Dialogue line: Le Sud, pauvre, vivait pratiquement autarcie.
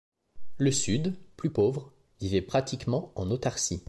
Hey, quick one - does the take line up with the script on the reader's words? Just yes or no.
no